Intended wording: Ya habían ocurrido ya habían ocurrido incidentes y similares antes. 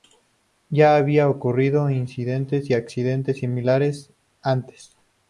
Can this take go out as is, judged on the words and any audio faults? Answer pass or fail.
fail